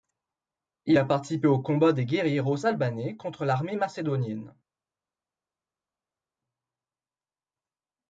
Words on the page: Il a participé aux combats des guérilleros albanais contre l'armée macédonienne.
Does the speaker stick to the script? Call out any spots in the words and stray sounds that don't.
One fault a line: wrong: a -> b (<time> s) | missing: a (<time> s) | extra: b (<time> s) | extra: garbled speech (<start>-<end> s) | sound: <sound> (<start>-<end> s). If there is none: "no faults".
no faults